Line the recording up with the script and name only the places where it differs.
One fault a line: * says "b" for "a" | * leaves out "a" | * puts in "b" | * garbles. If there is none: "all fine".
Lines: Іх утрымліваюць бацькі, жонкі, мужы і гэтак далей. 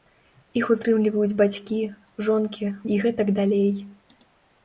* leaves out "мужы"